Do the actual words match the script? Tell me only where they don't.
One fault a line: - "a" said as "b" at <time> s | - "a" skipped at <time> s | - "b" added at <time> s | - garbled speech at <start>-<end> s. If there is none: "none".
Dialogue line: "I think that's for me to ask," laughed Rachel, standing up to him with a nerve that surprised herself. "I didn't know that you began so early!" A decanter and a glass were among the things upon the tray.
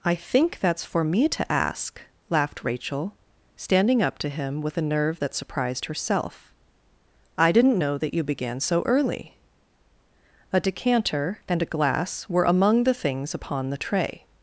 none